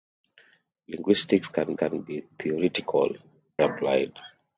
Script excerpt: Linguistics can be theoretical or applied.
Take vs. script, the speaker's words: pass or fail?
fail